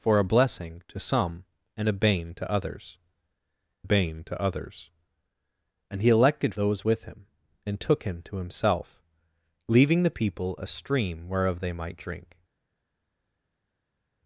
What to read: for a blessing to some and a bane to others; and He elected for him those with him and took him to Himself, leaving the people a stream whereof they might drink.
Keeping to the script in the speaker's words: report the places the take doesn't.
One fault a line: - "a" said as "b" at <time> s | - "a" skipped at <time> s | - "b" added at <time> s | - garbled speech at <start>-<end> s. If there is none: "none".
- "bane to others" added at 3.8 s
- "for him" skipped at 6.5 s